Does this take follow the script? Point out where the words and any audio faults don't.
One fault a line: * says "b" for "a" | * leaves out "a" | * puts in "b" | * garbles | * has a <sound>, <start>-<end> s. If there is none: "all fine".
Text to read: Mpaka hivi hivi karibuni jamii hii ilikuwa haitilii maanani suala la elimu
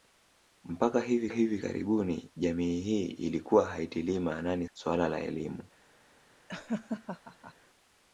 * has a laugh, 6.5-7.5 s